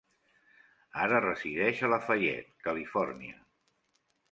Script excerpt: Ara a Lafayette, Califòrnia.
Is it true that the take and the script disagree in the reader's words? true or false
true